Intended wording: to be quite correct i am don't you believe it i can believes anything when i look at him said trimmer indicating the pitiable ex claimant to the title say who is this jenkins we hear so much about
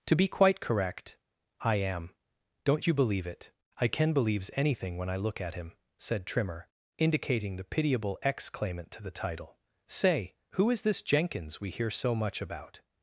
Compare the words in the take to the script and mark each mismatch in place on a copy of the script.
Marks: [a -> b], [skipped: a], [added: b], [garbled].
to be quite correct i am don't you believe it i can believes anything when i look at him said trimmer indicating the pitiable ex claimant to the title say who is this jenkins we hear so much about